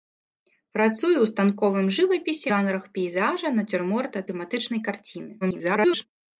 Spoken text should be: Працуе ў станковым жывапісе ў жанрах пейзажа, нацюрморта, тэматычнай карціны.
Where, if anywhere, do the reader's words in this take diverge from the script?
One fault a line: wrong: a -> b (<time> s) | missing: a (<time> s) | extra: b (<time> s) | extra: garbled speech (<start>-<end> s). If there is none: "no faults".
missing: ў (2.5 s)
extra: garbled speech (5.4-6.1 s)